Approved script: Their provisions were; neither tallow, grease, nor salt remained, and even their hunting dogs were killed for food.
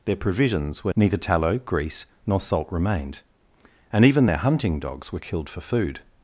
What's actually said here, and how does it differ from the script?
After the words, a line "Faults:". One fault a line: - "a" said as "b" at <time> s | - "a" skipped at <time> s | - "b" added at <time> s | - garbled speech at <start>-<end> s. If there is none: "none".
Their provisions were; neither tallow, grease, nor salt remained, and even their hunting dogs were killed for food.
Faults:
none